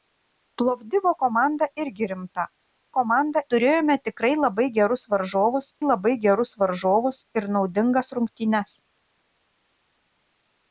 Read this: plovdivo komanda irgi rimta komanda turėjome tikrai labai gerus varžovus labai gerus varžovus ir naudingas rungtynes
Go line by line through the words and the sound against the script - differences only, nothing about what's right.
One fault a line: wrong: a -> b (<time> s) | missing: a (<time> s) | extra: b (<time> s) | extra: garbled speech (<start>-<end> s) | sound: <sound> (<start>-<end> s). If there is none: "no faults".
no faults